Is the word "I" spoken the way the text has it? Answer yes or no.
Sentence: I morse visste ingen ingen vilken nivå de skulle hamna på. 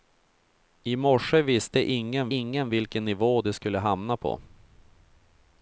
yes